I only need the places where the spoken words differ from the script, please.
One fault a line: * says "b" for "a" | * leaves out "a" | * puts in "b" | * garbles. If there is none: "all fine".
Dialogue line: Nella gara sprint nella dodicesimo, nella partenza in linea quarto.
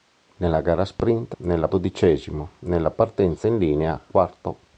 all fine